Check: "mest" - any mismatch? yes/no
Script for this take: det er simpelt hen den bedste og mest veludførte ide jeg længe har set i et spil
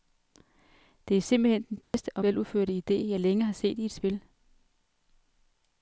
yes